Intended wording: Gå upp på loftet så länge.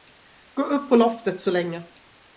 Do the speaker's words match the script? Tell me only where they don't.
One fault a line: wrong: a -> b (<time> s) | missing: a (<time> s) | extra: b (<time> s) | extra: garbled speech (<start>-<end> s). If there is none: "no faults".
no faults